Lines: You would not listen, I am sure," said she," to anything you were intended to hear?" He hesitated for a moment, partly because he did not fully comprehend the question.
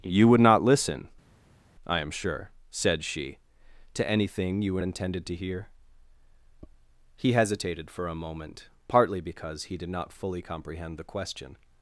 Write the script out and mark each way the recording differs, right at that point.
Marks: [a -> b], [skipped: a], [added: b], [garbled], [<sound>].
You would not listen, I am sure," said she," to anything you were intended to hear?" He hesitated for a moment, partly because he did not fully comprehend the question.